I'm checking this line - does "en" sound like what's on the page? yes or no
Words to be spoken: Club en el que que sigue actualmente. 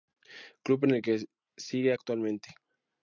yes